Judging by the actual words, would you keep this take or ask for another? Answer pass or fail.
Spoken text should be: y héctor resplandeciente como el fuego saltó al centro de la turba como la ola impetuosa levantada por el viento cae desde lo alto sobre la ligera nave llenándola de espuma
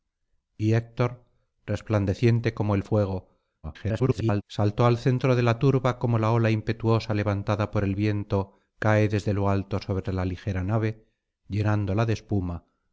fail